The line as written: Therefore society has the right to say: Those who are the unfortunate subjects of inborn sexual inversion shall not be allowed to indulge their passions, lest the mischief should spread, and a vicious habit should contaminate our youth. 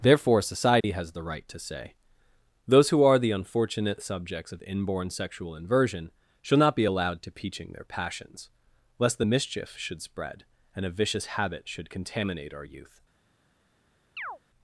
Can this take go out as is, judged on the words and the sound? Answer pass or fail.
fail